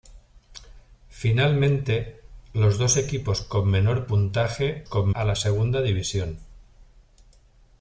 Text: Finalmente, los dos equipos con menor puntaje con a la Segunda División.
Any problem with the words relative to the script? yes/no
no